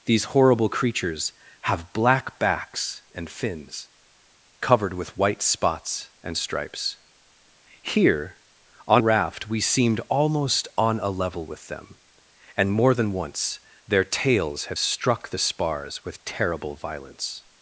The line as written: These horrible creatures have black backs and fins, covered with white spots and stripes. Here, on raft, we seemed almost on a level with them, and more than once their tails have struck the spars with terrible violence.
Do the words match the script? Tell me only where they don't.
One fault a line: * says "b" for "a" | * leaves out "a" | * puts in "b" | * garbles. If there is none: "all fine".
all fine